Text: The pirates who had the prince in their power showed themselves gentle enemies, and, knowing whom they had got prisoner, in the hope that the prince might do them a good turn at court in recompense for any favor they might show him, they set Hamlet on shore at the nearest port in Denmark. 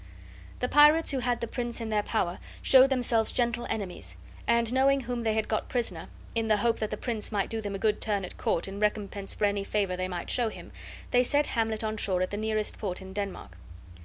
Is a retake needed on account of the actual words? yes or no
no